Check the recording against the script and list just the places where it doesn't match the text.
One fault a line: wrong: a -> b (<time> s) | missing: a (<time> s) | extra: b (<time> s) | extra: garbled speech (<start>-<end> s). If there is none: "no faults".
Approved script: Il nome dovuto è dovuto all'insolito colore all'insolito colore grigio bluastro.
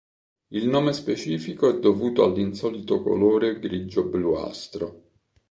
wrong: dovuto -> specifico (0.9 s)
missing: all'insolito colore (3.6 s)